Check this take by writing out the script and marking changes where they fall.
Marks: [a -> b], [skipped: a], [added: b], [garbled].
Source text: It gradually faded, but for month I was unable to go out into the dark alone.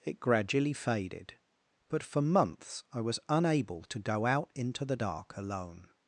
It gradually faded, but for [month -> months] I was unable to go out into the dark alone.